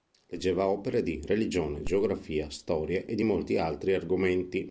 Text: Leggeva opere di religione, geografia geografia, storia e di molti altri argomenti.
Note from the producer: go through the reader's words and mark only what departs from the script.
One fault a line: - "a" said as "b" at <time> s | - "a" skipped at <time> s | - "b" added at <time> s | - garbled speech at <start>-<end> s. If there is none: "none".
- "geografia" skipped at 2.5 s